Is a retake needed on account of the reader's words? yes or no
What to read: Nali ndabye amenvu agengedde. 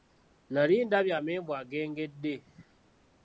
no